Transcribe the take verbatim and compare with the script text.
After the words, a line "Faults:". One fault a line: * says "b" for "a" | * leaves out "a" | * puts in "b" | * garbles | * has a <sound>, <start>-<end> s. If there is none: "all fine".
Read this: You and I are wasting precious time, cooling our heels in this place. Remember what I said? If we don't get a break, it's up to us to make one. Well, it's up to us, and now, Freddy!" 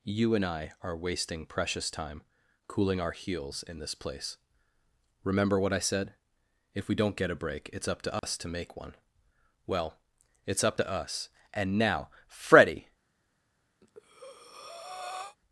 You and I are wasting precious time, cooling our heels in this place. Remember what I said? If we don't get a break, it's up to us to make one. Well, it's up to us, and now, Freddy!"
Faults:
* has a dropout, 8.2-8.2 s
* has a breath, 13.8-15.4 s